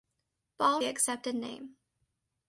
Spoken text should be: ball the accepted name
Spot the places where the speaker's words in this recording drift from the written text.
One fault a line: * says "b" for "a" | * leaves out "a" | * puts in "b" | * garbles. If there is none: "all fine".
all fine